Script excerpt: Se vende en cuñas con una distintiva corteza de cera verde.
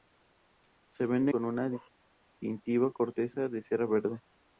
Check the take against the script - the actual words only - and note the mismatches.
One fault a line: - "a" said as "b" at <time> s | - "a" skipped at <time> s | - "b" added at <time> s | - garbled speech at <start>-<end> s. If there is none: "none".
- "en cuñas" skipped at 1.3 s